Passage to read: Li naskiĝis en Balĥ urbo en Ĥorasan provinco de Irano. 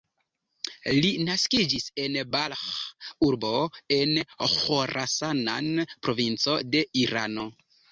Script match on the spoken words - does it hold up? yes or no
yes